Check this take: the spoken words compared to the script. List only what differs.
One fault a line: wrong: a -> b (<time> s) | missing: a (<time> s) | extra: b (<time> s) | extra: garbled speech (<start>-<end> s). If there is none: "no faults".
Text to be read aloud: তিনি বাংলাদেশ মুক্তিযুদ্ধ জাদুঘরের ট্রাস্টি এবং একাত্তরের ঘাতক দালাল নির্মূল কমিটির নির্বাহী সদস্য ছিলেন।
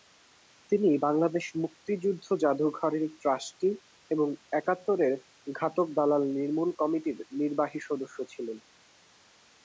no faults